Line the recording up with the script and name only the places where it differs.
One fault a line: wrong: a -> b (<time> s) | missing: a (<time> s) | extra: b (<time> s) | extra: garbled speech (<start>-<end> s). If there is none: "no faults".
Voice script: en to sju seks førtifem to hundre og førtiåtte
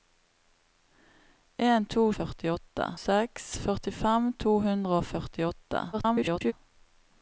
wrong: sju -> førtiåtte (2.2 s)
extra: garbled speech (5.9-6.5 s)